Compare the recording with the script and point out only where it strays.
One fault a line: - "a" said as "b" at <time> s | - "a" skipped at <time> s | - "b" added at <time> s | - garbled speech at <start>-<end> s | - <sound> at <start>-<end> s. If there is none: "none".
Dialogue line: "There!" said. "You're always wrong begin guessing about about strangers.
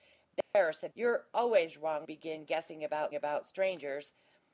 - dropout at 0.4-0.5 s